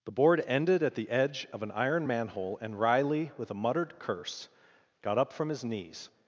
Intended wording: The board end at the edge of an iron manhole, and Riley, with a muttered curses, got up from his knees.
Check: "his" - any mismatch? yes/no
no